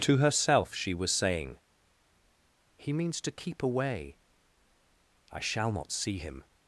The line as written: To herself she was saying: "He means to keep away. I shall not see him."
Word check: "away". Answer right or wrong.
right